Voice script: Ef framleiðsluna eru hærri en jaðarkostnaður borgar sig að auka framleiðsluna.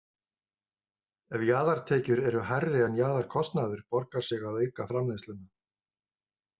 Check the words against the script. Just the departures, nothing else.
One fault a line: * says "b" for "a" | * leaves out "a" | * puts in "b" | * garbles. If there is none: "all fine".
* says "jaðartekjur" for "framleiðsluna"